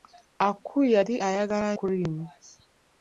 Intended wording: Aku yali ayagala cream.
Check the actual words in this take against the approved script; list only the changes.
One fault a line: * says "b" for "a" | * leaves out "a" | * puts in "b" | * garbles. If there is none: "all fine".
all fine